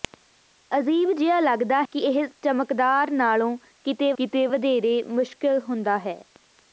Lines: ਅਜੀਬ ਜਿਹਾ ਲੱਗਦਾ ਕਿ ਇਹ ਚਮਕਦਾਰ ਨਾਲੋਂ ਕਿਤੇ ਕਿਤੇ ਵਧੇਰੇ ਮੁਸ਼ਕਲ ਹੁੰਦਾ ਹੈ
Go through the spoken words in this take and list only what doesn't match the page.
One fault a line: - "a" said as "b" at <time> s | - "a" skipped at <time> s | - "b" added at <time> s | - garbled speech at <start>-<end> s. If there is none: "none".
none